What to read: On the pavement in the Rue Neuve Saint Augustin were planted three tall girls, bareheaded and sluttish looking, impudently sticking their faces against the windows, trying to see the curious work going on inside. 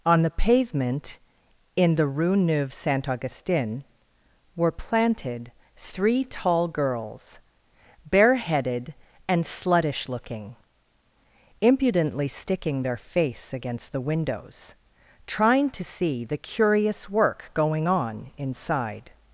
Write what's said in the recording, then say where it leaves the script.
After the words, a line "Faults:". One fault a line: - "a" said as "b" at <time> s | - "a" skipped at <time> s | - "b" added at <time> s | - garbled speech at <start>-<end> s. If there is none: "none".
On the pavement in the Rue Neuve Saint Augustin were planted three tall girls, bareheaded and sluttish looking, impudently sticking their face against the windows, trying to see the curious work going on inside.
Faults:
- "faces" said as "face" at 13.0 s